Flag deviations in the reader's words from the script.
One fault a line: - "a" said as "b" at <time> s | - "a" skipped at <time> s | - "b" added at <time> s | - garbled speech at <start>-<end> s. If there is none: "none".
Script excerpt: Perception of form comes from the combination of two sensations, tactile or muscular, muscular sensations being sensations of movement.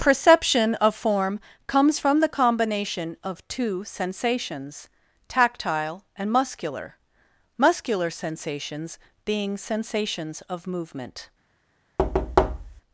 - "or" said as "and" at 6.2 s